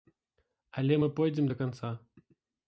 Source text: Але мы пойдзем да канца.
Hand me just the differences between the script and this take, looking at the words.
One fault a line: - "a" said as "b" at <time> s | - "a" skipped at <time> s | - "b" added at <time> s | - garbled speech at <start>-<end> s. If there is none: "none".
none